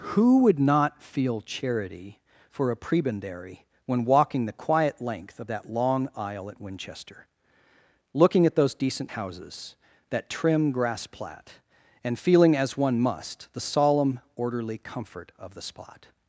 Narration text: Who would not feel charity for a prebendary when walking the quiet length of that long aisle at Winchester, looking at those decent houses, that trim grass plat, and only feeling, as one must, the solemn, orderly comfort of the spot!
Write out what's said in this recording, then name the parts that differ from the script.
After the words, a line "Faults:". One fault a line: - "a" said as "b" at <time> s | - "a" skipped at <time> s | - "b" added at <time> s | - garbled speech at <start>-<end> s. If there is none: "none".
Who would not feel charity for a prebendary when walking the quiet length of that long aisle at Winchester, looking at those decent houses, that trim grass plat, and feeling, as one must, the solemn, orderly comfort of the spot!
Faults:
- "only" skipped at 12.2 s